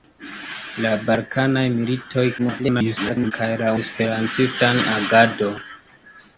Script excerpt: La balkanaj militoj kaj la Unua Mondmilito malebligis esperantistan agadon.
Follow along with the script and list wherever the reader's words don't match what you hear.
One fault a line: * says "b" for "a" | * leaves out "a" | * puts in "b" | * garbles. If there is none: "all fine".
* garbles
* leaves out "Unua Mondmilito malebligis"